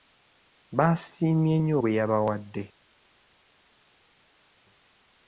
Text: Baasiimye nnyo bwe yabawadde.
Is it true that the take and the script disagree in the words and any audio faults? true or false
false